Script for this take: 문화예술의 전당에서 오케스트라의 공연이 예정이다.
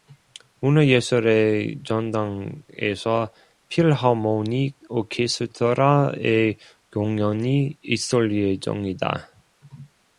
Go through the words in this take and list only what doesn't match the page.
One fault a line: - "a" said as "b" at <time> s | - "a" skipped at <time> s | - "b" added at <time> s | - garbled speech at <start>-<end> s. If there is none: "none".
- "필하모닉" added at 3.7 s
- "있을" added at 7.8 s